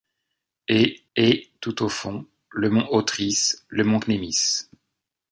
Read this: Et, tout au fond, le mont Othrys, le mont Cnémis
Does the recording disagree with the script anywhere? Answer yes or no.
yes